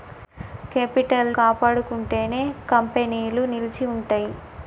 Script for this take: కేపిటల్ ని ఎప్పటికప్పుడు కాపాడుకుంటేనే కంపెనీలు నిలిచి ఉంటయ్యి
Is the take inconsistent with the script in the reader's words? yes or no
yes